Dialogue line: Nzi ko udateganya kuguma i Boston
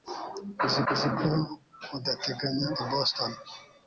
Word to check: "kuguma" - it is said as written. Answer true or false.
false